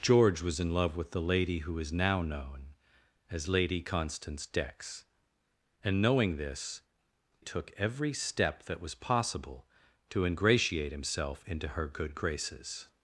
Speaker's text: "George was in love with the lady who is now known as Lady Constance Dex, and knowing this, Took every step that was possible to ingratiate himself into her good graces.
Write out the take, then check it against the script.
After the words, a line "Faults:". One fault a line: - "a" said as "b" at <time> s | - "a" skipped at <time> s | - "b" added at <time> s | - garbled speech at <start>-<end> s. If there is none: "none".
"George was in love with the lady who is now known as Lady Constance Dex, and knowing this, Took every step that was possible to ingratiate himself into her good graces.
Faults:
none